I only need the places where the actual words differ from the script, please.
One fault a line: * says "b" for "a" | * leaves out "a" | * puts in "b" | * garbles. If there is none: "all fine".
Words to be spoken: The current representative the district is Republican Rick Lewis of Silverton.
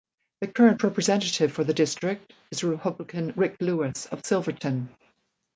* puts in "for"